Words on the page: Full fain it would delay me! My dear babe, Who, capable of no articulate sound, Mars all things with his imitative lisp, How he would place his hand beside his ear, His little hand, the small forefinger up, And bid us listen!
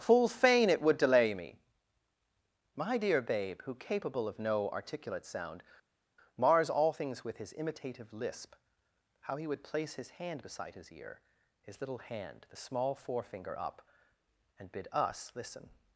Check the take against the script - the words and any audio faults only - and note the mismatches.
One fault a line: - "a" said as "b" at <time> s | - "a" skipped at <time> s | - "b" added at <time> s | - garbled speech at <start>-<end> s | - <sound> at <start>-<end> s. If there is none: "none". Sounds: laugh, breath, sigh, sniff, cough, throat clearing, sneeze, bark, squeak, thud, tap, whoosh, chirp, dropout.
none